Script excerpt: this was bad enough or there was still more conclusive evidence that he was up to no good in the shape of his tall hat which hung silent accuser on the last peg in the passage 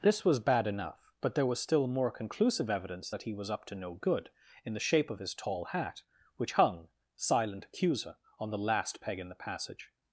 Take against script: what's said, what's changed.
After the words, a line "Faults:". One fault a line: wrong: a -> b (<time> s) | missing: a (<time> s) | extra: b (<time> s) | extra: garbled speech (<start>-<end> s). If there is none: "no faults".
this was bad enough but there was still more conclusive evidence that he was up to no good in the shape of his tall hat which hung silent accuser on the last peg in the passage
Faults:
wrong: or -> but (1.2 s)